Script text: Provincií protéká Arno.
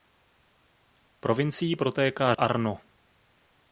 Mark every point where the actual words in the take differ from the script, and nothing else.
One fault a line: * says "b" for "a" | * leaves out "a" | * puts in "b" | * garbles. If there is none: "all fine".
all fine